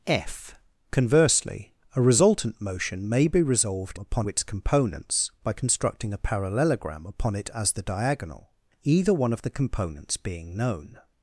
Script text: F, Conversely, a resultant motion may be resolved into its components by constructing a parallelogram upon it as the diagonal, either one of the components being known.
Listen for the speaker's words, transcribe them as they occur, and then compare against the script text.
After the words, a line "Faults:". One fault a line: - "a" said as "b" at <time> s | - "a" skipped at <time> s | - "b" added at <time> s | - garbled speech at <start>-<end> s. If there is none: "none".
F, Conversely, a resultant motion may be resolved upon its components by constructing a parallelogram upon it as the diagonal, either one of the components being known.
Faults:
- "into" said as "upon" at 4.0 s